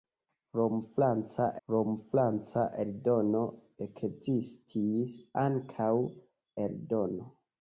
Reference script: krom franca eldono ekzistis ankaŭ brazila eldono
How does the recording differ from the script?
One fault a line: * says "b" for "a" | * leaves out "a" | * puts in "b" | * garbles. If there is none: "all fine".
* puts in "krom franca"
* leaves out "brazila"